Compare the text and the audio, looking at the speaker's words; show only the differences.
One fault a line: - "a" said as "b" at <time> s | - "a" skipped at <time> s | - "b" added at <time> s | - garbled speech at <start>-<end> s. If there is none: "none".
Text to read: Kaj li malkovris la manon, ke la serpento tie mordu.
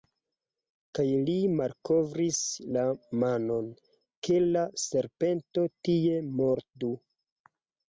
none